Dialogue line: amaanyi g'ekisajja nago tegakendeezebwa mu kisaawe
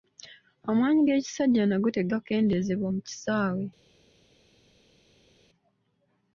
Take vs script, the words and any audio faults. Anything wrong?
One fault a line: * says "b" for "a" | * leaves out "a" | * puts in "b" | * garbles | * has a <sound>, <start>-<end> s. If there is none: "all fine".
all fine